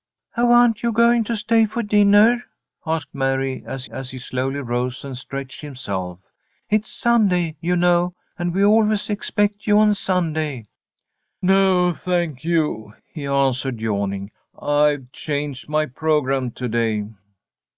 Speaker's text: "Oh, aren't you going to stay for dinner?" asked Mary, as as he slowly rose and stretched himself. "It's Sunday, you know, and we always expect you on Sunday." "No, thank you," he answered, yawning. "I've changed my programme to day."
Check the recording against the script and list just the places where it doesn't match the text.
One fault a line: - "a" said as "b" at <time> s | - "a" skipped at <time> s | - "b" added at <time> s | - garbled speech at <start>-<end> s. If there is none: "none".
none